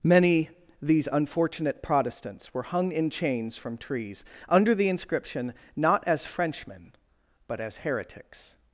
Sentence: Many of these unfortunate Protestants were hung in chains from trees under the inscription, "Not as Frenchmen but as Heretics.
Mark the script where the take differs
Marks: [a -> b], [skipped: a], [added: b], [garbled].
Many [skipped: of] these unfortunate Protestants were hung in chains from trees under the inscription, "Not as Frenchmen but as Heretics.